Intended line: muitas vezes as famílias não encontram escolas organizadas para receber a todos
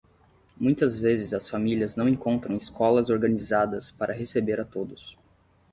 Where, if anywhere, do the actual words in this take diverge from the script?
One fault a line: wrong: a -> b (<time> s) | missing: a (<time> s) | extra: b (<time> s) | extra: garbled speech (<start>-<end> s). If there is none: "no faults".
no faults